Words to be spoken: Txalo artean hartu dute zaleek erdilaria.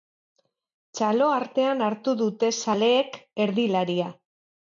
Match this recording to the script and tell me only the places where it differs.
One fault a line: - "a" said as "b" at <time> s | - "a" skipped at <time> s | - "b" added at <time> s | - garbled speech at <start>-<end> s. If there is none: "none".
none